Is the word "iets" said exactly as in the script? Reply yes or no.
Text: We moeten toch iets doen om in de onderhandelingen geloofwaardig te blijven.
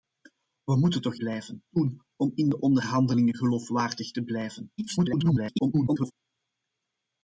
no